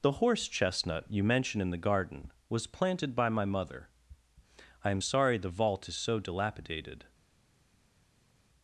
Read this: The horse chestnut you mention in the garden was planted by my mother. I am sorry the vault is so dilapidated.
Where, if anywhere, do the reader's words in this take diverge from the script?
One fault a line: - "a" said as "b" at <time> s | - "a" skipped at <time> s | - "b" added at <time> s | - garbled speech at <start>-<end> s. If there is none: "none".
none